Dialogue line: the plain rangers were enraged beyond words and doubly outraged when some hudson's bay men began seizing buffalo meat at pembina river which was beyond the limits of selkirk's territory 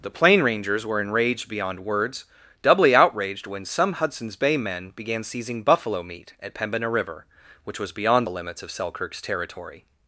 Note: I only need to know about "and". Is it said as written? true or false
false